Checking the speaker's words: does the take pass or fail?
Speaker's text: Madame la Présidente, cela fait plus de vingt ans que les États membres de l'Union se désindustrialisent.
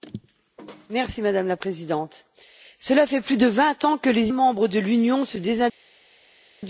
fail